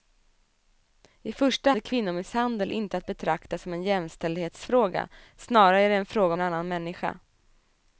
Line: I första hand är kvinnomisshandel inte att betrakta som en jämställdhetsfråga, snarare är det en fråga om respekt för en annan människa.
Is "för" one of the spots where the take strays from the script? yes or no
yes